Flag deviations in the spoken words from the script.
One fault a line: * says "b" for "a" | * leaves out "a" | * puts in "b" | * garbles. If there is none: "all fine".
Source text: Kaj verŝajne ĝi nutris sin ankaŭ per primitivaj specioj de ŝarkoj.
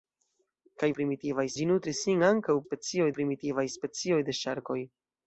* says "primitivaj" for "verŝajne"
* says "specioj" for "per"